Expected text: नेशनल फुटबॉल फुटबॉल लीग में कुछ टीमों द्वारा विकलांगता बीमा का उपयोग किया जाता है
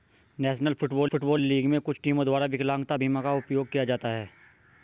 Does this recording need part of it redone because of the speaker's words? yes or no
no